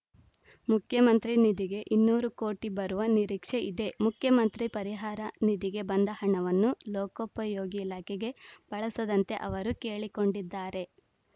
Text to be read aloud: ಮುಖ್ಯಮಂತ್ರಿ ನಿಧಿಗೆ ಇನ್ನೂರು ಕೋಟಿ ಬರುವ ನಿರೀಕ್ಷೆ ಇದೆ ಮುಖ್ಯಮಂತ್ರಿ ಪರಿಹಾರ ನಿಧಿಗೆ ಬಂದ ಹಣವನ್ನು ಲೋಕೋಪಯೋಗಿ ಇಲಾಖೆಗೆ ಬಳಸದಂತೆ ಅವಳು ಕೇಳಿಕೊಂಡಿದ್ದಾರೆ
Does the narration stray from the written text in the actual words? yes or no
yes